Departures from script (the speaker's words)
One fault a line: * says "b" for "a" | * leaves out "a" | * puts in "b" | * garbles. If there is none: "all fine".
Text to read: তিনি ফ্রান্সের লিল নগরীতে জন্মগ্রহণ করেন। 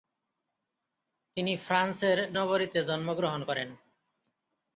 * leaves out "লিল"